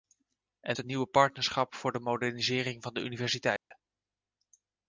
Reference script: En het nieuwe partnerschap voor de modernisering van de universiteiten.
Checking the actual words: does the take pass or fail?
pass